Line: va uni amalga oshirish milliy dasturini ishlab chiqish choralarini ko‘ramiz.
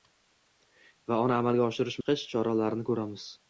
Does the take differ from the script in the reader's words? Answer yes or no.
yes